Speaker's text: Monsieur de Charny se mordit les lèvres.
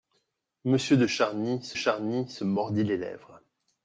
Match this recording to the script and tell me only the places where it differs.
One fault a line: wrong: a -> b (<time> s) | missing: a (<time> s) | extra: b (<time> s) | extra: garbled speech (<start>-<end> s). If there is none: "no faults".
extra: Charny se (1.7 s)